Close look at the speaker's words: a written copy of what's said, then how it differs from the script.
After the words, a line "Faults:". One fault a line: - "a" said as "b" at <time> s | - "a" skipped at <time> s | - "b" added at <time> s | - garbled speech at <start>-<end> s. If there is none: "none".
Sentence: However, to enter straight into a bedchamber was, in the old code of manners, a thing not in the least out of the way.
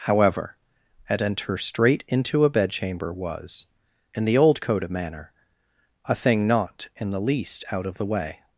However, at enter straight into a bedchamber was, in the old code of manner, a thing not in the least out of the way.
Faults:
- "to" said as "at" at 1.1 s
- "manners" said as "manner" at 4.9 s